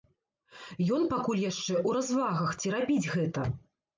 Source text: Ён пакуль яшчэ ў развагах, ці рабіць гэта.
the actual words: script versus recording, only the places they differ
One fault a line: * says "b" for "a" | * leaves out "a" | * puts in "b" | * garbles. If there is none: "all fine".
all fine